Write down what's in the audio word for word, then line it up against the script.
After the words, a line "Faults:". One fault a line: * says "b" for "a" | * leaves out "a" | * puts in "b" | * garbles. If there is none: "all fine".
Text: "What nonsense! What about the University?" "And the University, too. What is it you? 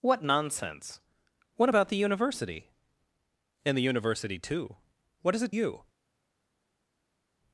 "What nonsense! What about the University?" "And the University, too. What is it you?
Faults:
all fine